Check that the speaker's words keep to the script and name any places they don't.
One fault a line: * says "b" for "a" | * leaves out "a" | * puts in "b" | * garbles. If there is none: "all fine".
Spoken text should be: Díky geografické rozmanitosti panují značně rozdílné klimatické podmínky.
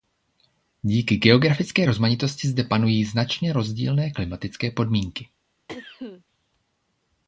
* puts in "zde"